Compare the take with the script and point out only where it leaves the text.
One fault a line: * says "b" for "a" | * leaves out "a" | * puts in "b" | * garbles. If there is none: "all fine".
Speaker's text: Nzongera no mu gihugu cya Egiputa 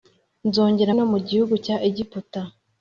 all fine